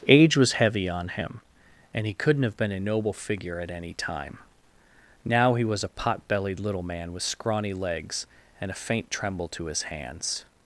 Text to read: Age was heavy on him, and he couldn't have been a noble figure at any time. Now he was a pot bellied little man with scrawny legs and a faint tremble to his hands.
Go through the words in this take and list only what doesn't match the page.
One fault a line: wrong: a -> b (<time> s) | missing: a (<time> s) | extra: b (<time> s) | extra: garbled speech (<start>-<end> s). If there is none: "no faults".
no faults